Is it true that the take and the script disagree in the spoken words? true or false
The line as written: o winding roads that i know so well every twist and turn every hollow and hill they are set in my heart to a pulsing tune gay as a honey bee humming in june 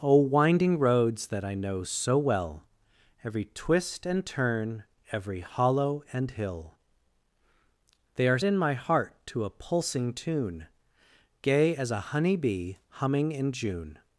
true